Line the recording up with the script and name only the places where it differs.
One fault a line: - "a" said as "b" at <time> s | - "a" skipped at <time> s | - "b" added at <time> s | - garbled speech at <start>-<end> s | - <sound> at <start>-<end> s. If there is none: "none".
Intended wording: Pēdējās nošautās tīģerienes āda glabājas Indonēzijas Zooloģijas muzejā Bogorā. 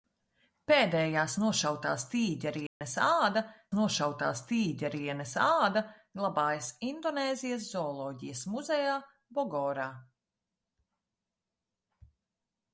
- dropout at 2.7-2.8 s
- "nošautās tīģerienes āda" added at 3.8 s